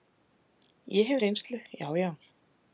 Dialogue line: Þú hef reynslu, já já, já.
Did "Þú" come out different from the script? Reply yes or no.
yes